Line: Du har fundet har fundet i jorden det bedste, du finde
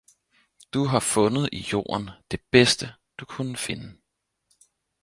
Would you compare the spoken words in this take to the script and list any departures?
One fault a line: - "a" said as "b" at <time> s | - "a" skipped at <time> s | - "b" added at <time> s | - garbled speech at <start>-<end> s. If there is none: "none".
- "har fundet" skipped at 1.5 s
- "kunne" added at 3.2 s